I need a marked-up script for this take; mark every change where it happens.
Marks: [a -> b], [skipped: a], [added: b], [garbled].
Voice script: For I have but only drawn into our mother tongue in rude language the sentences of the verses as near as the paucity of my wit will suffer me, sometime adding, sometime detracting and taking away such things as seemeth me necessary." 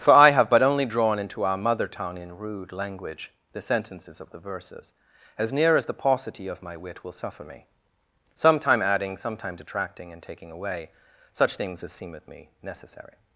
For I have but only drawn into our mother tongue in rude language the sentences of the verses as near as the paucity of my wit will suffer me, sometime adding, sometime detracting and taking away such things as seemeth me necessary."